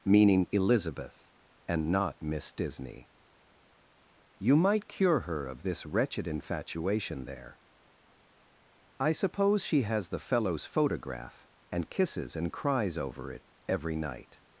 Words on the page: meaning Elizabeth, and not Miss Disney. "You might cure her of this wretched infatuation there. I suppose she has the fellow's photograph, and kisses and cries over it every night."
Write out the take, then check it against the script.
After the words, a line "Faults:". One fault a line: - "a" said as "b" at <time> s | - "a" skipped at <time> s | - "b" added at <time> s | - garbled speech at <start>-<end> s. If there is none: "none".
meaning Elizabeth, and not Miss Disney. "You might cure her of this wretched infatuation there. I suppose she has the fellow's photograph, and kisses and cries over it every night."
Faults:
none